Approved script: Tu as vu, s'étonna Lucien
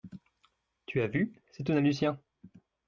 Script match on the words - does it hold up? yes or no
yes